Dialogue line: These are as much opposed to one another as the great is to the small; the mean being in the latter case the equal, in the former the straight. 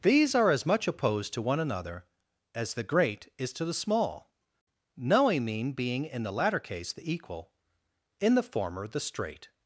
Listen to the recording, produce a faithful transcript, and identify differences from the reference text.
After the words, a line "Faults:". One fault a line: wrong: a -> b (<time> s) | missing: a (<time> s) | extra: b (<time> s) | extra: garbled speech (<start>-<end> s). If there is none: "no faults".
These are as much opposed to one another as the great is to the small; knowing mean being in the latter case the equal, in the former the straight.
Faults:
wrong: the -> knowing (5.0 s)